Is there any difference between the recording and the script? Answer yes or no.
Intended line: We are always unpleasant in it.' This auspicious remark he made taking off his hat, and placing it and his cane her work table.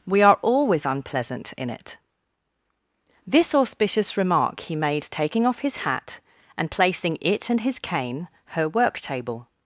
no